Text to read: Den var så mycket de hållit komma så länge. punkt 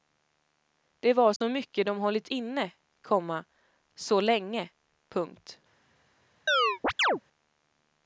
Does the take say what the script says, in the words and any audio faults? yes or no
no